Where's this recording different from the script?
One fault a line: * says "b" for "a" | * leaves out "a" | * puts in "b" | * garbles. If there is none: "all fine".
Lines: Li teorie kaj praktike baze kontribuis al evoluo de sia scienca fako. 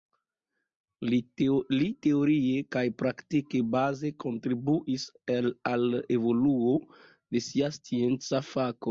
all fine